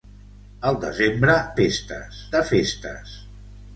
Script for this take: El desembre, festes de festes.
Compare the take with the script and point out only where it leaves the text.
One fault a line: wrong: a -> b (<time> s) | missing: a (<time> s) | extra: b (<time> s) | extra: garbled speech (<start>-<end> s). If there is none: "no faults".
no faults